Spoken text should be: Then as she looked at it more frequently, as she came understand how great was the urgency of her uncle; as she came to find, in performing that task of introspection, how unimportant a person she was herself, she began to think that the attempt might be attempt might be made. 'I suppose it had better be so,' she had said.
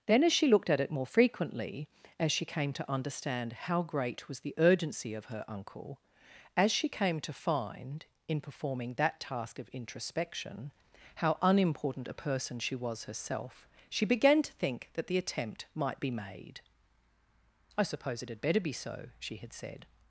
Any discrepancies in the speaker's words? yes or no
yes